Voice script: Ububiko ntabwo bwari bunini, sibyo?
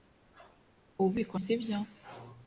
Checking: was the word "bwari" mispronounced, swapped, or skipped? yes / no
yes